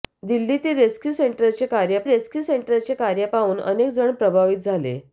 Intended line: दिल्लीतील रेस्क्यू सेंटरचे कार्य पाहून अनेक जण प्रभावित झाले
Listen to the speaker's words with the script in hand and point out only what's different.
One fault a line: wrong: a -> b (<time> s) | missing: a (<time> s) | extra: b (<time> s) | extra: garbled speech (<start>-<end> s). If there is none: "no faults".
extra: रेस्क्यू सेंटरचे कार्य (2.1 s)